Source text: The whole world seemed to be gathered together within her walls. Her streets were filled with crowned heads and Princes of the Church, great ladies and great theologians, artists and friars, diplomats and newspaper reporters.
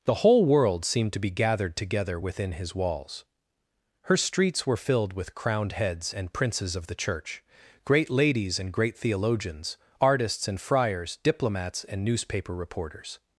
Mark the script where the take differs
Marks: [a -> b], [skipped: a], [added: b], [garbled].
The whole world seemed to be gathered together within [her -> his] walls. Her streets were filled with crowned heads and Princes of the Church, great ladies and great theologians, artists and friars, diplomats and newspaper reporters.